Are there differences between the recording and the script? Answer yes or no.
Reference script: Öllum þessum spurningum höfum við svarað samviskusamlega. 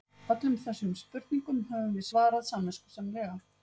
no